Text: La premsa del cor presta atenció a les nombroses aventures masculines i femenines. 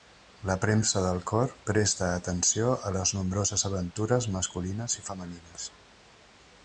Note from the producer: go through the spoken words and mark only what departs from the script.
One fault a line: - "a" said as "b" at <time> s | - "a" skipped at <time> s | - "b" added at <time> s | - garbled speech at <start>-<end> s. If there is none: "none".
none